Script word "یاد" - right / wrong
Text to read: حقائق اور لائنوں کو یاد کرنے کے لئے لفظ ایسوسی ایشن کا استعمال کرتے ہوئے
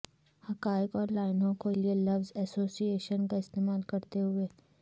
wrong